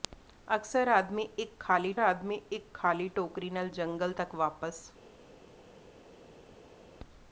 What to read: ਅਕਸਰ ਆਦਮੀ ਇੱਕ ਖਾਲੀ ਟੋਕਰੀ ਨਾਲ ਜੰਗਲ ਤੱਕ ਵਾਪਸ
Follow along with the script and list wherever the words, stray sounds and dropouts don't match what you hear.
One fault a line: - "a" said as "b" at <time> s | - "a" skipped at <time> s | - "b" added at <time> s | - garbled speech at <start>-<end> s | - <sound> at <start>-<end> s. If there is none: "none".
- "ਆਦਮੀ ਇੱਕ ਖਾਲੀ" added at 2.0 s